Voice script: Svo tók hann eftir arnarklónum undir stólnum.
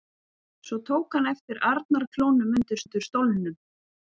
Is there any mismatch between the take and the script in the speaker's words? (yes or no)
yes